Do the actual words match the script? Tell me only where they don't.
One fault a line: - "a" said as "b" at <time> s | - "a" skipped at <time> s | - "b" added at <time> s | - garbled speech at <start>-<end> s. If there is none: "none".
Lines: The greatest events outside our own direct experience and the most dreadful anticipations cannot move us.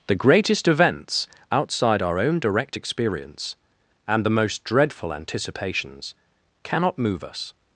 none